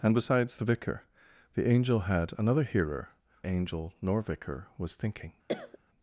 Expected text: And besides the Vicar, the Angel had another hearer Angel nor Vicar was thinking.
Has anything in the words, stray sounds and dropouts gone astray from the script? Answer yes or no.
yes